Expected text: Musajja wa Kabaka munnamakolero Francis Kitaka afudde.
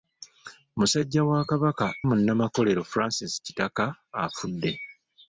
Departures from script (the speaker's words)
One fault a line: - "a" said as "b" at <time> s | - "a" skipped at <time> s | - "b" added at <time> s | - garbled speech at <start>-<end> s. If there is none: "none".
none